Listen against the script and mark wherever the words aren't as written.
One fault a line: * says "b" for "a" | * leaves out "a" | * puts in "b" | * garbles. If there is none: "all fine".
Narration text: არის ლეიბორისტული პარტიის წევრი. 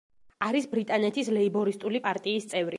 * puts in "ბრიტანეთის"